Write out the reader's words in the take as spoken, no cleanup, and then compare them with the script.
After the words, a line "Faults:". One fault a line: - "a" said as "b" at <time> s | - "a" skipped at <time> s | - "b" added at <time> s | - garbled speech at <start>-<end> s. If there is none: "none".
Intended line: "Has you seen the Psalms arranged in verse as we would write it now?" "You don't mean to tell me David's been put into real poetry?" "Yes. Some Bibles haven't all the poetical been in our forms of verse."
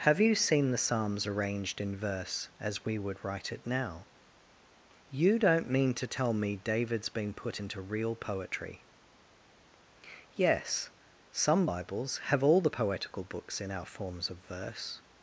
"Have you seen the Psalms arranged in verse as we would write it now?" "You don't mean to tell me David's been put into real poetry?" "Yes. Some Bibles have all the poetical books in our forms of verse."
Faults:
- "Has" said as "Have" at 0.0 s
- "haven't" said as "have" at 12.2 s
- "been" said as "books" at 13.2 s